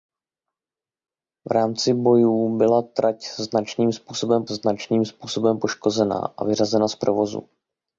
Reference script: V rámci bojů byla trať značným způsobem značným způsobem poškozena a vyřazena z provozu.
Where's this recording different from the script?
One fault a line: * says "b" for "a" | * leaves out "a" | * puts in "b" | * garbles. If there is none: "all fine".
all fine